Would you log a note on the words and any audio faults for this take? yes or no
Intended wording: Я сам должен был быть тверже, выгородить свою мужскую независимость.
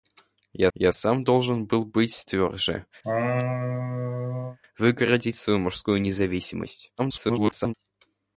yes